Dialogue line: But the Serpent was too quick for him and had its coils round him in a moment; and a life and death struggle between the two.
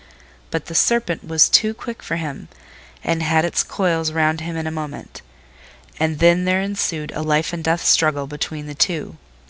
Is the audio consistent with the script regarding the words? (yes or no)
no